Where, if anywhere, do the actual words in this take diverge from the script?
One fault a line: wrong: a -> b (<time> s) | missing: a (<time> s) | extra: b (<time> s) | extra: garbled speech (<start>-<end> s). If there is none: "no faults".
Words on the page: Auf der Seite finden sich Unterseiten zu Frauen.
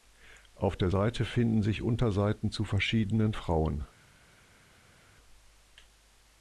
extra: verschiedenen (2.6 s)